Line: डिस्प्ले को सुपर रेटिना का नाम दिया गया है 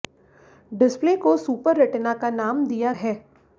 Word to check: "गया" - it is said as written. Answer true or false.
false